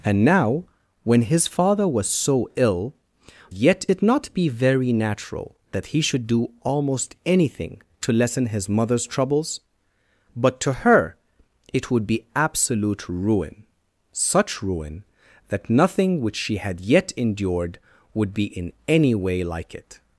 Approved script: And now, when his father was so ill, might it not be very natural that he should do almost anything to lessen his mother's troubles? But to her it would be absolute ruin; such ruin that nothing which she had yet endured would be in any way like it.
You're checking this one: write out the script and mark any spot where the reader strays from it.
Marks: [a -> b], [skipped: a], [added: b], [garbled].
And now, when his father was so ill, [might -> yet] it not be very natural that he should do almost anything to lessen his mother's troubles? But to her it would be absolute ruin; such ruin that nothing which she had yet endured would be in any way like it.